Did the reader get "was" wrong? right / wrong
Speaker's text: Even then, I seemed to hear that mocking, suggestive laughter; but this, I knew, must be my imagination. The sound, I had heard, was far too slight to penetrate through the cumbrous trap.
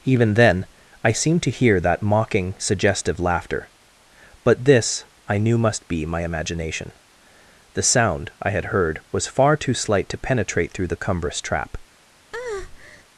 right